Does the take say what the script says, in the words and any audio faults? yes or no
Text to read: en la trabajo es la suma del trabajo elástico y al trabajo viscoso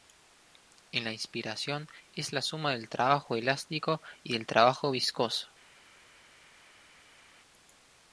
no